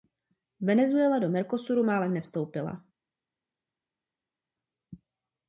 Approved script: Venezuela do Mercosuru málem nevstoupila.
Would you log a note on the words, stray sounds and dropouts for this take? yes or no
no